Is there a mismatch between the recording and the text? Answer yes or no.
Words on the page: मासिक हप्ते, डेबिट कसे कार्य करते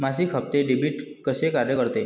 no